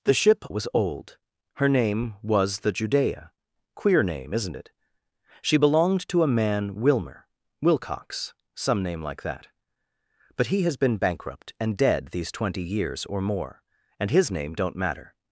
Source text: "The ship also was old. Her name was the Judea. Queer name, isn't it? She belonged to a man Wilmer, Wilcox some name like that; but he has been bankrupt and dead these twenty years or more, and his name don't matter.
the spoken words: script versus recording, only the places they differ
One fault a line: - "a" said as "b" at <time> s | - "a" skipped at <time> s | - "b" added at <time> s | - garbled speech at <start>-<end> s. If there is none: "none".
- "also" skipped at 0.5 s